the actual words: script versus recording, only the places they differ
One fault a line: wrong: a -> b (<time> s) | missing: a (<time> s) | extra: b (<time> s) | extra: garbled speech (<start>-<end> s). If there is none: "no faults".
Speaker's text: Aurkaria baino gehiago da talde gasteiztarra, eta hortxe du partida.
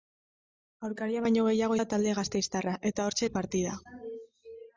no faults